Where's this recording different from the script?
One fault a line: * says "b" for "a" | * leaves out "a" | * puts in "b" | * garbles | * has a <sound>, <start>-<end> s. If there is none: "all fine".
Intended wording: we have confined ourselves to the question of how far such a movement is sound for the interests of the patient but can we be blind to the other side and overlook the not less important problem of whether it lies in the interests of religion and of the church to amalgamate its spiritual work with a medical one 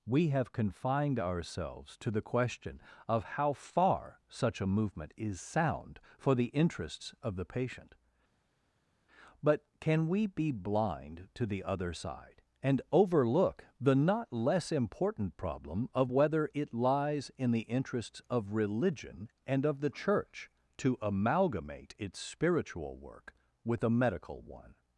all fine